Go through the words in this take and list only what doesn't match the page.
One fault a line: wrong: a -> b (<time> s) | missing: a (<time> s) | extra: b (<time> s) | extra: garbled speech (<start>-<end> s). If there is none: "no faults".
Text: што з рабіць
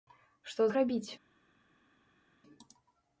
no faults